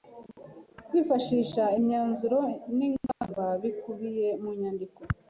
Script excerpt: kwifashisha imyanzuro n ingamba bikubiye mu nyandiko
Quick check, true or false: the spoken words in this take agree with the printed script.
true